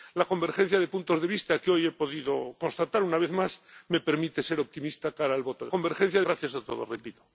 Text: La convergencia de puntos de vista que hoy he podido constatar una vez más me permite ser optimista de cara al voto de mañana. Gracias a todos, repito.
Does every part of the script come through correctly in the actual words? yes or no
no